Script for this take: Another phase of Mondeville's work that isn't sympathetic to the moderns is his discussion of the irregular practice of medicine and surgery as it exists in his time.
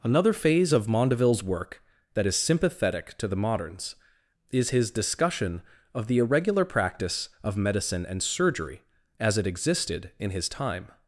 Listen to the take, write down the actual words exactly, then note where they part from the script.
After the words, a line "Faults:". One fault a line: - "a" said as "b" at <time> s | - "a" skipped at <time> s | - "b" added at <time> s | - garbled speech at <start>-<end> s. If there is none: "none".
Another phase of Mondeville's work that is sympathetic to the moderns is his discussion of the irregular practice of medicine and surgery as it existed in his time.
Faults:
- "isn't" said as "is" at 2.2 s
- "exists" said as "existed" at 9.4 s